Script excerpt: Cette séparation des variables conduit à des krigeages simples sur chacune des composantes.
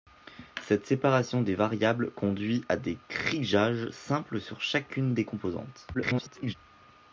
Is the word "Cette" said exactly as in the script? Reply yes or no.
yes